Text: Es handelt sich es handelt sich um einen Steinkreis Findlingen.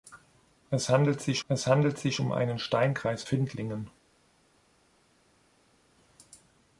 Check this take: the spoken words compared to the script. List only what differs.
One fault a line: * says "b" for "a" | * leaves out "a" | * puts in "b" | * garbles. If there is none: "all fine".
all fine